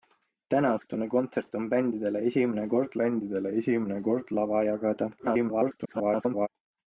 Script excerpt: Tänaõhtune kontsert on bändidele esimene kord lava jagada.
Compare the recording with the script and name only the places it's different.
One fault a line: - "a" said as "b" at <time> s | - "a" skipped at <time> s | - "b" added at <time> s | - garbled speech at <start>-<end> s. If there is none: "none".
- "bändidele esimene kord" added at 3.0 s
- garbled speech at 5.2-6.5 s